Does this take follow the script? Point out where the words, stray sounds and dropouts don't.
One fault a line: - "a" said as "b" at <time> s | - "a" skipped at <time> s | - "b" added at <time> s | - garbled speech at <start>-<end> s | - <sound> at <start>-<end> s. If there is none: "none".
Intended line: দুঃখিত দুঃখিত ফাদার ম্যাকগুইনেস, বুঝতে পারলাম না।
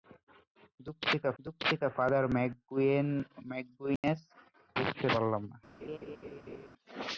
- dropout at 4.0-4.0 s
- laugh at 5.8-6.7 s